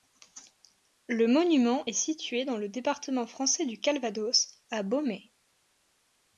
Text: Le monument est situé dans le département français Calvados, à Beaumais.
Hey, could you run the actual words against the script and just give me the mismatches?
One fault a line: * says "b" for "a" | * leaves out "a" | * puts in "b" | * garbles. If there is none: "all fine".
* puts in "du"